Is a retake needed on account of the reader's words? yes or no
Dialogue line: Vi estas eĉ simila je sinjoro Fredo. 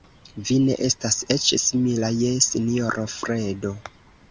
yes